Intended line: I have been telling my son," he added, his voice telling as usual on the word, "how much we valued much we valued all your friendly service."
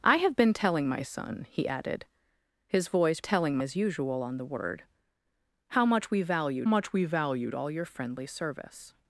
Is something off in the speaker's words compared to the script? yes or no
no